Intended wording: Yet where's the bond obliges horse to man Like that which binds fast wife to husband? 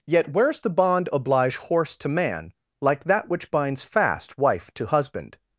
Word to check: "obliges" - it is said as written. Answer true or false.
false